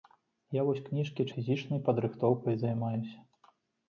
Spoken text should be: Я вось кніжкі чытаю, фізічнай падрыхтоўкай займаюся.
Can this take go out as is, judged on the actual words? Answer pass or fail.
fail